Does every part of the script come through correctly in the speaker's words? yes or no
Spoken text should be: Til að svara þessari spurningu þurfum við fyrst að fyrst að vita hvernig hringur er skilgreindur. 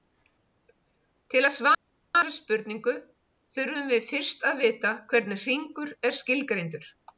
no